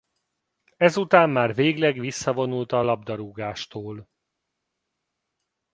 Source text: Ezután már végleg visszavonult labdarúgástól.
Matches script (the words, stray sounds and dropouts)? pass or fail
fail